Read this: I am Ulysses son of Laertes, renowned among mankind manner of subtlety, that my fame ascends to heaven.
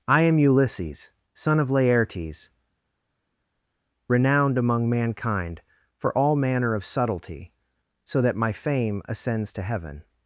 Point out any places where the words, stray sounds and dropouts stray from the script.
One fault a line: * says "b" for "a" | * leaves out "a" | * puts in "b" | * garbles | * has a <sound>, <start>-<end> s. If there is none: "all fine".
* puts in "for all"
* puts in "so"